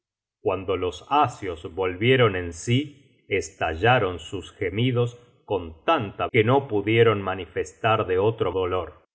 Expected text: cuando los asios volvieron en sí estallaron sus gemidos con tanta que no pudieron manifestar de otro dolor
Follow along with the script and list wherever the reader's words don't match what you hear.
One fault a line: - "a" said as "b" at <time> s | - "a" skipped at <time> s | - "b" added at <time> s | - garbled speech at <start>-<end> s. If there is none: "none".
none